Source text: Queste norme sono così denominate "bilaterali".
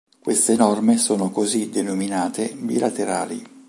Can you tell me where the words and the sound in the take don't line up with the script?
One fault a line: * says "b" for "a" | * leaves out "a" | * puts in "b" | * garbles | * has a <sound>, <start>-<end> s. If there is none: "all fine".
all fine